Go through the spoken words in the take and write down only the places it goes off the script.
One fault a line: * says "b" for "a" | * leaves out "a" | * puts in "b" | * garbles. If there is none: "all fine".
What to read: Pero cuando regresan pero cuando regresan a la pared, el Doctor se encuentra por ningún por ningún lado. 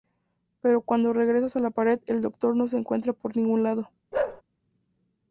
* leaves out "pero cuando regresan"
* puts in "no"
* leaves out "por ningún"